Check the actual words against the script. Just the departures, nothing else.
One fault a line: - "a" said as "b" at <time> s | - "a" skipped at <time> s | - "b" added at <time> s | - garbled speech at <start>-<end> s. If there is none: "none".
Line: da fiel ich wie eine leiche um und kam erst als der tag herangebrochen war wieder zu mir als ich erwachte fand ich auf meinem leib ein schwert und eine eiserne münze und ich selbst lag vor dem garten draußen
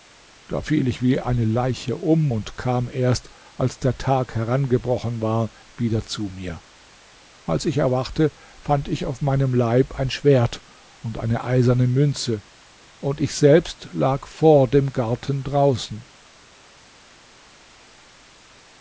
none